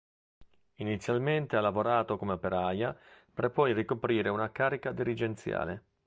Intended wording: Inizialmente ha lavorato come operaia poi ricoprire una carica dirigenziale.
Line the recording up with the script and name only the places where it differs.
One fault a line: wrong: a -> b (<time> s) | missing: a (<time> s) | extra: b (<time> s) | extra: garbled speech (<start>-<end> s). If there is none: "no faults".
extra: per (3.3 s)